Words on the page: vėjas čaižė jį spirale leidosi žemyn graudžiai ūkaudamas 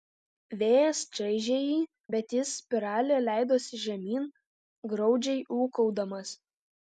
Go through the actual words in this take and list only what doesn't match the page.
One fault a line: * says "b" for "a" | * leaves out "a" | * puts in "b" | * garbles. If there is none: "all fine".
* puts in "bet jis"